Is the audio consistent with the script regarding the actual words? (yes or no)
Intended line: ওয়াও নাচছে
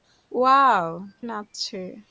yes